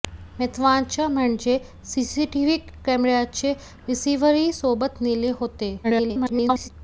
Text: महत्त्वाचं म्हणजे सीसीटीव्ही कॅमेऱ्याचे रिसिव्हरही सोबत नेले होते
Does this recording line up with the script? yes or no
no